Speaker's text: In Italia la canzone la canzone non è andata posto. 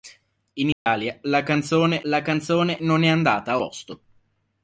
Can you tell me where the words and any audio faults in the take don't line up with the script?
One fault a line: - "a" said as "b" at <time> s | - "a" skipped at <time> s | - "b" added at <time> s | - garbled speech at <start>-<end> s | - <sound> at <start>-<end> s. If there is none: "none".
- dropout at 0.7-0.9 s